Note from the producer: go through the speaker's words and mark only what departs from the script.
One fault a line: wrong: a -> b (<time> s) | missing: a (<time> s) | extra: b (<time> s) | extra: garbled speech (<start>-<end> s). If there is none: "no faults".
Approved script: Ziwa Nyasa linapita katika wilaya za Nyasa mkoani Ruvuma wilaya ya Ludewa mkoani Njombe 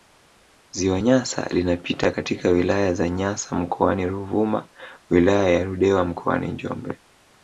no faults